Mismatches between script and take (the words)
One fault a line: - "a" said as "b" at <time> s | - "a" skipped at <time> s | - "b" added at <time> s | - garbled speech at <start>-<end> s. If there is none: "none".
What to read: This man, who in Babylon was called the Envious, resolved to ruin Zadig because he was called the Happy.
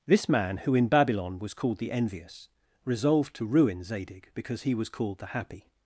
none